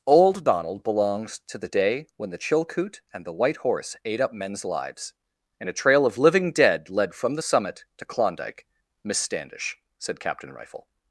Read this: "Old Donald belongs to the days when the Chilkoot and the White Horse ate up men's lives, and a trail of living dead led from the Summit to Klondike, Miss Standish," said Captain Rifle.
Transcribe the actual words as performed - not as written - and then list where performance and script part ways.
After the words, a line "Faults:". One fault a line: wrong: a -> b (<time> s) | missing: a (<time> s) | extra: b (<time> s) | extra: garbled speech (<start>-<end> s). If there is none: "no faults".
"Old Donald belongs to the day when the Chilkoot and the White Horse ate up men's lives, and a trail of living dead led from the Summit to Klondike, Miss Standish," said Captain Rifle.
Faults:
wrong: days -> day (1.7 s)